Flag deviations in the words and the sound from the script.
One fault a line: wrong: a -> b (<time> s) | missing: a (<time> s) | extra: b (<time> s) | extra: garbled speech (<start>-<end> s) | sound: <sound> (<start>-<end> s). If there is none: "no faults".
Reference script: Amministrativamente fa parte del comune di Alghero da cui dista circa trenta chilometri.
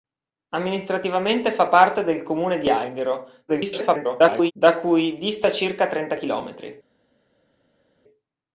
extra: garbled speech (3.5-4.5 s)